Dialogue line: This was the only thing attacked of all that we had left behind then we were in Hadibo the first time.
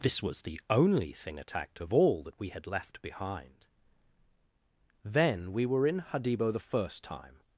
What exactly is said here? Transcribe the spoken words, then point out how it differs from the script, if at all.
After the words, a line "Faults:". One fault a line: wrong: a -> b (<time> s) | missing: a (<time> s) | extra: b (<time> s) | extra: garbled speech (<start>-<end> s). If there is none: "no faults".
This was the only thing attacked of all that we had left behind then we were in Hadibo the first time.
Faults:
no faults